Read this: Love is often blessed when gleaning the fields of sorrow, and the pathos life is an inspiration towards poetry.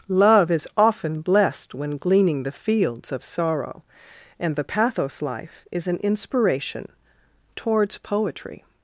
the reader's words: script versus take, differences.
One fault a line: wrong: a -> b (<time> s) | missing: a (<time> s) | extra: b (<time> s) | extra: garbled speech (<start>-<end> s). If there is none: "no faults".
no faults